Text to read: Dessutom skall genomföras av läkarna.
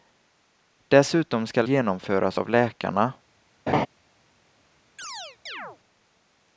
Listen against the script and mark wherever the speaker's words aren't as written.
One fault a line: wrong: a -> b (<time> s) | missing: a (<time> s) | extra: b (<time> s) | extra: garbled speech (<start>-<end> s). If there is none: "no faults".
no faults